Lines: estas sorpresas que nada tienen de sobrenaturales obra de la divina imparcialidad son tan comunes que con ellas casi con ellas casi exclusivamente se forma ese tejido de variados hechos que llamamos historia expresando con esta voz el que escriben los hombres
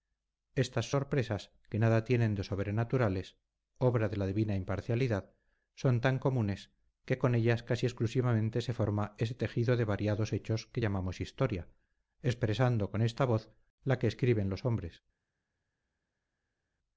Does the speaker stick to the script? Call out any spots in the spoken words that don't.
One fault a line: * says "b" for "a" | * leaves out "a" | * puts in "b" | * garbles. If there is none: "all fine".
* leaves out "con ellas casi"
* says "la" for "el"